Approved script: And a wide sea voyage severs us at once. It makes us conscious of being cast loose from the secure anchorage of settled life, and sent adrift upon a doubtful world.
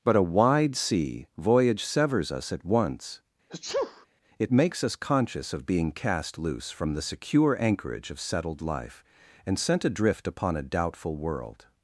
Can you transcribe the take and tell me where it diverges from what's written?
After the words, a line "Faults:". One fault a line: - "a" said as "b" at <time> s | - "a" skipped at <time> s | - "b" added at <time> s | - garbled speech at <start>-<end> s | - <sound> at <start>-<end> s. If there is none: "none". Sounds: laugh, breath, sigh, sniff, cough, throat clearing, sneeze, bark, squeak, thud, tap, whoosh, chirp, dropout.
But a wide sea voyage severs us at once. It makes us conscious of being cast loose from the secure anchorage of settled life, and sent adrift upon a doubtful world.
Faults:
- "And" said as "But" at 0.0 s
- sneeze at 3.5-4.1 s